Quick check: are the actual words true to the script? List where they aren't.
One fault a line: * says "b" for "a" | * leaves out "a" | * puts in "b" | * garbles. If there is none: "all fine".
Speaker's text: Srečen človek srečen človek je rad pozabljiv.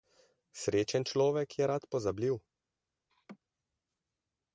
* leaves out "srečen človek"